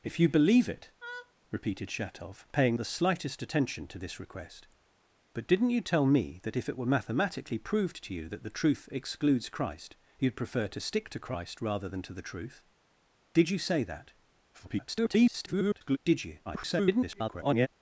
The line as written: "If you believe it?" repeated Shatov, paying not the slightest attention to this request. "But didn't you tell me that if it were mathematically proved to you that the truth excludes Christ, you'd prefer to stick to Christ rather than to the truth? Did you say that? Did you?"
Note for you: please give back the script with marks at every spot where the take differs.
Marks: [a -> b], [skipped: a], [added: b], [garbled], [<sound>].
"If you believe it?" [laugh] repeated Shatov, paying [skipped: not] the slightest attention to this request. "But didn't you tell me that if it were mathematically proved to you that the truth excludes Christ, you'd prefer to stick to Christ rather than to the truth? Did you say that? [garbled] Did you?" [garbled]